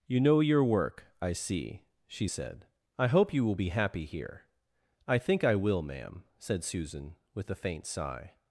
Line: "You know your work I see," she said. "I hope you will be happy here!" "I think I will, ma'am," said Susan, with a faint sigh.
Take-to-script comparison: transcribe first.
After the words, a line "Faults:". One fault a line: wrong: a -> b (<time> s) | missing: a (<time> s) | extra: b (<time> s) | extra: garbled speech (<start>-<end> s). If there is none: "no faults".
"You know your work I see," she said. "I hope you will be happy here!" "I think I will, ma'am," said Susan, with a faint sigh.
Faults:
no faults